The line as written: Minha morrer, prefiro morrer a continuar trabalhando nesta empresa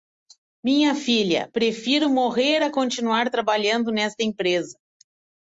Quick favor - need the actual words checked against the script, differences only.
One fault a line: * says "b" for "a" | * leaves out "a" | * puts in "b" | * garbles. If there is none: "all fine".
* says "filha" for "morrer"